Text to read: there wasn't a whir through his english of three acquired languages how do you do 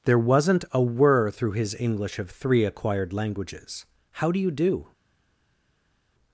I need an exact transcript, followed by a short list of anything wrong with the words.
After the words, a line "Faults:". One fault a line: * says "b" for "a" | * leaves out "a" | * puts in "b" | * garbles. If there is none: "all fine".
there wasn't a whir through his english of three acquired languages how do you do
Faults:
all fine